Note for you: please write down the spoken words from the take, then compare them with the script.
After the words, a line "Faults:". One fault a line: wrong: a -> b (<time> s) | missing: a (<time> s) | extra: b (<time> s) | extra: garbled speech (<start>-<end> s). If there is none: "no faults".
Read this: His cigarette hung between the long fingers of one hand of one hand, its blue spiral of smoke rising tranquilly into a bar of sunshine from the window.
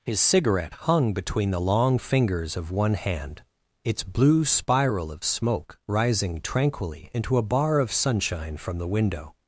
His cigarette hung between the long fingers of one hand, its blue spiral of smoke rising tranquilly into a bar of sunshine from the window.
Faults:
missing: of one hand (3.4 s)